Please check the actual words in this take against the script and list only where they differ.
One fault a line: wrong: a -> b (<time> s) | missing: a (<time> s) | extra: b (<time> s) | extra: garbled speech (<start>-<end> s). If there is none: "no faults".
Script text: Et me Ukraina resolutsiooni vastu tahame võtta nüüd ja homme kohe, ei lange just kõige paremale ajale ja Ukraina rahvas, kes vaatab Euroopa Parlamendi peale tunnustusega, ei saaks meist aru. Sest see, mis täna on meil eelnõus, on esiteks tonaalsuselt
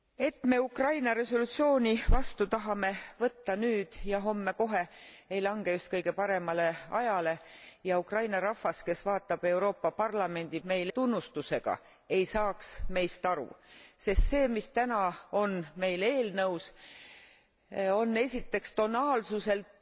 wrong: peale -> meil (10.6 s)